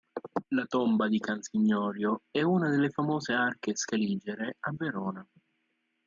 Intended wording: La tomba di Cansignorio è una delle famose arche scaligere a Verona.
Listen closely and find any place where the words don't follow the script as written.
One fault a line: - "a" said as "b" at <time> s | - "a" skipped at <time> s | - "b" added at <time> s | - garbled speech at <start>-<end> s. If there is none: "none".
none